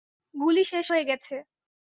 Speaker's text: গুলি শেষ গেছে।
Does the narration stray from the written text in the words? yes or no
yes